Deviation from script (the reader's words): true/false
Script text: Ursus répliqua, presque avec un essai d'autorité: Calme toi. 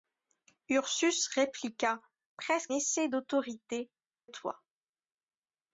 true